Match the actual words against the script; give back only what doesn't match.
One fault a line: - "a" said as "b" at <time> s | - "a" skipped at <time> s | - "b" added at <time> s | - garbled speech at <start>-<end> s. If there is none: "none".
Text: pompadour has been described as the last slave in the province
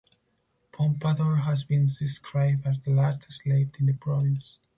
none